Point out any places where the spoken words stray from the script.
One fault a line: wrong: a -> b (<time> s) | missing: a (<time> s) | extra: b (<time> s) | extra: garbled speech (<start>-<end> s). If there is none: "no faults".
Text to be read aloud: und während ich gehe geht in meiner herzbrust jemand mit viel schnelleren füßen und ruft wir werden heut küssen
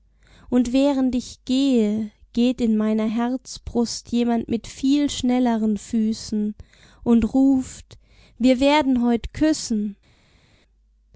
no faults